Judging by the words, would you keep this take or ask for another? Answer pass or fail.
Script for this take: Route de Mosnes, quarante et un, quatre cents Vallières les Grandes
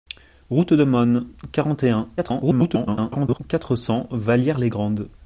fail